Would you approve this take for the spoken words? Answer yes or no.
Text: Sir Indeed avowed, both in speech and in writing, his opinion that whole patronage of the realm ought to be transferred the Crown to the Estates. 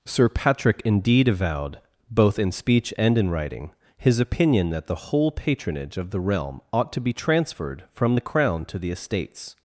no